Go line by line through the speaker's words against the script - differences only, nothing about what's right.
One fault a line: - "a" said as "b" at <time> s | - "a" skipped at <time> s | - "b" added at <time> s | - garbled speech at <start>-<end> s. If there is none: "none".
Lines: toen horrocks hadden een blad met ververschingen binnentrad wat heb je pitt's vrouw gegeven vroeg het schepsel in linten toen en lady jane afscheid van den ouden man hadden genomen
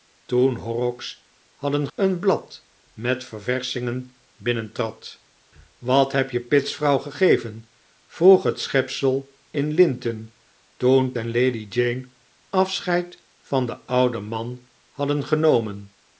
none